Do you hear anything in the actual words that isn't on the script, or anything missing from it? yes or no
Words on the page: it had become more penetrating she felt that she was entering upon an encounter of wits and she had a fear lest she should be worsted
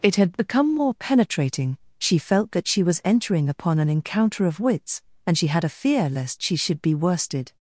no